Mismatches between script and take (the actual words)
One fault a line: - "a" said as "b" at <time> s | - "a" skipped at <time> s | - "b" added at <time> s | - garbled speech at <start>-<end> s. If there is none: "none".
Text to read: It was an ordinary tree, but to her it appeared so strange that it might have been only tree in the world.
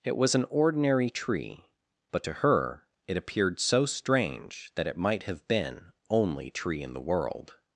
none